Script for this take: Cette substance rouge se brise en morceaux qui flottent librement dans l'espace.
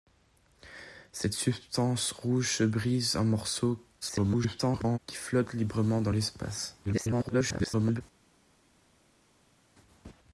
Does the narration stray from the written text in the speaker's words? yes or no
yes